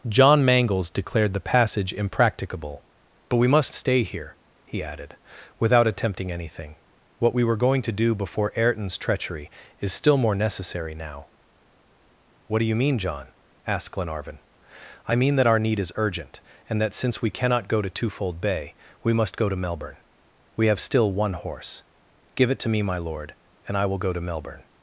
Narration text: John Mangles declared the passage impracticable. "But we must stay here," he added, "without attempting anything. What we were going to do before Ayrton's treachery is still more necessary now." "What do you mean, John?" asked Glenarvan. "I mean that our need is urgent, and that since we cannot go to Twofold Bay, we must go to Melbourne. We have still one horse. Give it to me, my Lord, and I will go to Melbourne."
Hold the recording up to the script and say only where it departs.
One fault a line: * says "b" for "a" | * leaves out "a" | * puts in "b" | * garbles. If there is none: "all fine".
all fine